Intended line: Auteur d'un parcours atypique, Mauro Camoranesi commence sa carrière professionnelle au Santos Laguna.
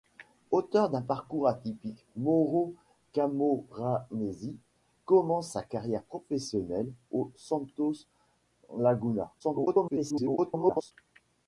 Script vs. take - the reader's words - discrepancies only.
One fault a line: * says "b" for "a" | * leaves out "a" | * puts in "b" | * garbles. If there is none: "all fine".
* garbles